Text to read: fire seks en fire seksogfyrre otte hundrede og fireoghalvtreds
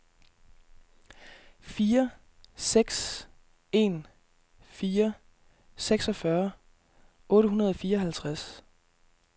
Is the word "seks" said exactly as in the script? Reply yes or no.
yes